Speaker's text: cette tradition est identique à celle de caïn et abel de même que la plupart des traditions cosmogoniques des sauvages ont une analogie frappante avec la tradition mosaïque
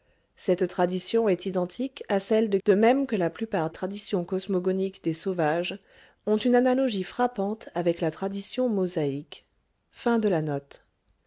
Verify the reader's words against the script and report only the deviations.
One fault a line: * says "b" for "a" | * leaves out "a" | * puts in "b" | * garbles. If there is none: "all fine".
* leaves out "caïn et abel"
* leaves out "des"